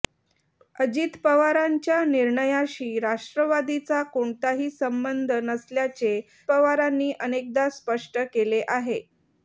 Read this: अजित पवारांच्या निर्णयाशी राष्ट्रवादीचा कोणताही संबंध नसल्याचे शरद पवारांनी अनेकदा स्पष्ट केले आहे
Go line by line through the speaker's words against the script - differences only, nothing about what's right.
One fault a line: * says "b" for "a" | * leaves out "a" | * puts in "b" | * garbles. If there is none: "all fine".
* leaves out "शरद"